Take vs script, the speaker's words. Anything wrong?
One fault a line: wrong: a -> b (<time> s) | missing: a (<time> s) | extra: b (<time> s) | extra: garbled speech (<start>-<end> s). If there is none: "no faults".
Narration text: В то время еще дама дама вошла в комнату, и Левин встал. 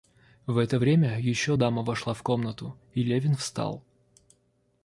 wrong: то -> это (0.6 s)
missing: дама (1.8 s)